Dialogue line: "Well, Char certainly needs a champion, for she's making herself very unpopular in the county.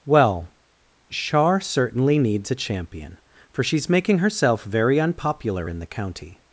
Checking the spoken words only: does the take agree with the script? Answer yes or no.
yes